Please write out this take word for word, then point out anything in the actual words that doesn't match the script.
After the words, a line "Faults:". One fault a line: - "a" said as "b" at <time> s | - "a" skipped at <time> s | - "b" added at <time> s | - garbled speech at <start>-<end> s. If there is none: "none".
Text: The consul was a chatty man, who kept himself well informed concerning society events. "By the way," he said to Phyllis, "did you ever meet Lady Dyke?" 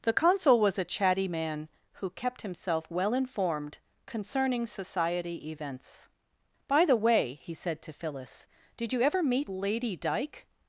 The consul was a chatty man, who kept himself well informed concerning society events. "By the way," he said to Phyllis, "did you ever meet Lady Dyke?"
Faults:
none